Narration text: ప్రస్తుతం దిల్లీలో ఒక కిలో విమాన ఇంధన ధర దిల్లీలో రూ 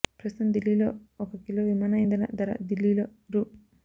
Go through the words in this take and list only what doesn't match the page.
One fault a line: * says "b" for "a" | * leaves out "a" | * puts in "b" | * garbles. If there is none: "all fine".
all fine